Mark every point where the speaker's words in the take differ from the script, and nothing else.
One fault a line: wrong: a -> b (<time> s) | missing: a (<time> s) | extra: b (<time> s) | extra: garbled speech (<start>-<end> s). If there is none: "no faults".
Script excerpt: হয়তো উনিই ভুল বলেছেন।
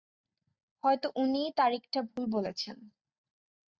extra: তারিখটা (1.6 s)